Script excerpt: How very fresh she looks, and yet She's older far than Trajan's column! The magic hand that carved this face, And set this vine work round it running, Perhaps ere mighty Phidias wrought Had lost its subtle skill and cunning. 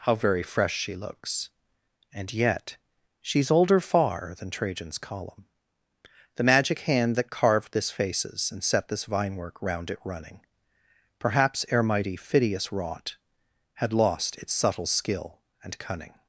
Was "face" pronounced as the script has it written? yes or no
no